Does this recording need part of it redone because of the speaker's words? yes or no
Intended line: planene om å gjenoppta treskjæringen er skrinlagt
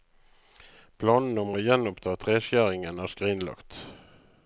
no